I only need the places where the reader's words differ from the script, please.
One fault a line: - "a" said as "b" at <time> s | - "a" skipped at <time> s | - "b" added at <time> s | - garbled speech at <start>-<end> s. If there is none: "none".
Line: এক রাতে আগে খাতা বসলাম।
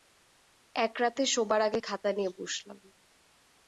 - "শোবার" added at 1.2 s
- "নিয়ে" added at 2.1 s